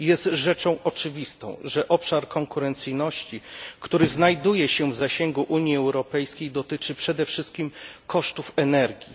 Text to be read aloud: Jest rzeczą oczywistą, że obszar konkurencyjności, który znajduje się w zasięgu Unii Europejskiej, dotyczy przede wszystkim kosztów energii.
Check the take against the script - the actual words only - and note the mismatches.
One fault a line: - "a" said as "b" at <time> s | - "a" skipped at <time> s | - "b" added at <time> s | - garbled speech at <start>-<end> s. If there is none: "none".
none